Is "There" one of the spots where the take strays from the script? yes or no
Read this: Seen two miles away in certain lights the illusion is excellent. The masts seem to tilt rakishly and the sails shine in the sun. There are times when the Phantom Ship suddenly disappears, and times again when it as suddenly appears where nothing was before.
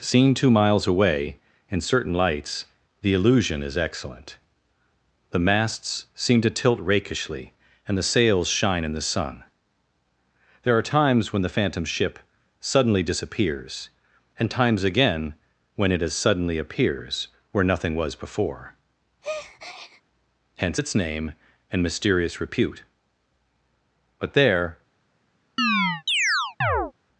no